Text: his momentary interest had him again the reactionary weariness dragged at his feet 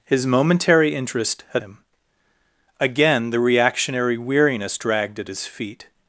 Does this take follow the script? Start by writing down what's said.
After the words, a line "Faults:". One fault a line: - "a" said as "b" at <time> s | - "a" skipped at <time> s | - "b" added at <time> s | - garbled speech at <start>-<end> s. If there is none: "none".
his momentary interest had him again the reactionary weariness dragged at his feet
Faults:
none